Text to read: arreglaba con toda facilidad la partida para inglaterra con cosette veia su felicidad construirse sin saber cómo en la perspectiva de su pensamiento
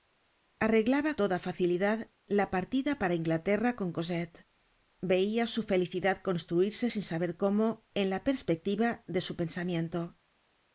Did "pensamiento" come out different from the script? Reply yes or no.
no